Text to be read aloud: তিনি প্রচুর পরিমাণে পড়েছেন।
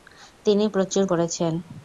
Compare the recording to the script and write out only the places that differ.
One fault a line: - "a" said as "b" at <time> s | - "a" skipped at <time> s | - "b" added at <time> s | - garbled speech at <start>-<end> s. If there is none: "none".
- "পরিমাণে" skipped at 1.0 s